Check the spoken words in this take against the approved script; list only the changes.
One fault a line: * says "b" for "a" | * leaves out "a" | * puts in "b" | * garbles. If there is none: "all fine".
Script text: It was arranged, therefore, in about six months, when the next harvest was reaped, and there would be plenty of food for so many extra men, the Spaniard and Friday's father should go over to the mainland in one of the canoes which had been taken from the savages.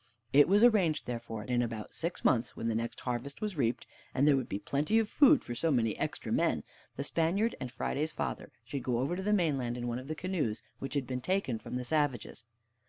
all fine